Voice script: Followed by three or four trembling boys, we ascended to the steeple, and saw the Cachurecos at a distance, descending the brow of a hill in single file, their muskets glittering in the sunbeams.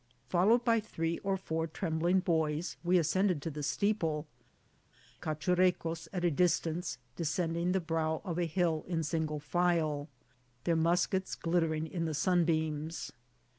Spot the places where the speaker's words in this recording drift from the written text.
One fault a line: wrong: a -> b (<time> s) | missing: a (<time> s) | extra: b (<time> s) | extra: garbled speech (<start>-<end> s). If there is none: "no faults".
missing: and saw the (4.2 s)